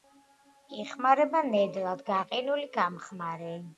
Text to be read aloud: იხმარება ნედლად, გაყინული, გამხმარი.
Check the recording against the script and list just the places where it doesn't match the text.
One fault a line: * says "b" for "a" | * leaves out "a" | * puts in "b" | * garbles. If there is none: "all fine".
all fine